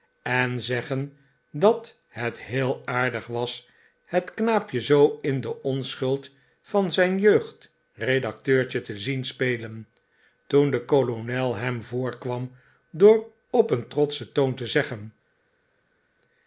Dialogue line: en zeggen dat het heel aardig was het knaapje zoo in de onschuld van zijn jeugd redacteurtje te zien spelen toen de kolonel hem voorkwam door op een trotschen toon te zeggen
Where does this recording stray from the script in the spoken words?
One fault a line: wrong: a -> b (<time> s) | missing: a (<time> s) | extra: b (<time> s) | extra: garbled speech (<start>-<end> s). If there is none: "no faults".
no faults